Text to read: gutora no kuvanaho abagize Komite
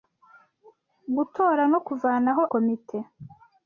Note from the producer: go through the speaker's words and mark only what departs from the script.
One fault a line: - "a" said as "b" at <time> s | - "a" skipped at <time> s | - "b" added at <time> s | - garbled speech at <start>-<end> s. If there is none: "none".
- "abagize" skipped at 2.4 s